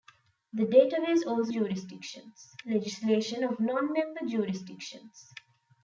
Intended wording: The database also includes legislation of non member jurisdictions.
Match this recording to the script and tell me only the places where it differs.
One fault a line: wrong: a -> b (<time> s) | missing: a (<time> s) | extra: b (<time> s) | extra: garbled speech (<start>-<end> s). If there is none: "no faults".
wrong: includes -> jurisdictions (1.5 s)